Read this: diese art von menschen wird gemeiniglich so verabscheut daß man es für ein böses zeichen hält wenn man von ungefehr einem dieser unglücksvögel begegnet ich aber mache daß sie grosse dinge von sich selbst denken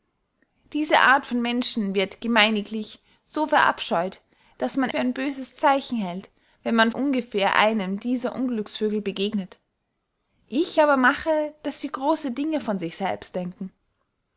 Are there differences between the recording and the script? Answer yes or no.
yes